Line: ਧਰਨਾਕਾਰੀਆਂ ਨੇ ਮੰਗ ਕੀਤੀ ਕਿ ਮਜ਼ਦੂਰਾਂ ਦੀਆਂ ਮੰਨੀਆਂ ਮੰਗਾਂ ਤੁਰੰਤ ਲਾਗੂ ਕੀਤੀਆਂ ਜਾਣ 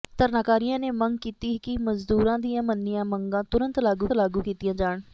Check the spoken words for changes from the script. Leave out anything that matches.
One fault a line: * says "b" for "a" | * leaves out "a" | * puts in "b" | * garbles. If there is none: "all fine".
* puts in "ਲਾਗੂ"